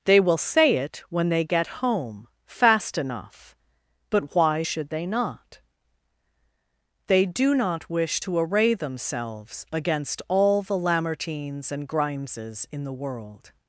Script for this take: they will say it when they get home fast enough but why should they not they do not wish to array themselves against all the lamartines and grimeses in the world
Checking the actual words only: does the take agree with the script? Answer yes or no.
yes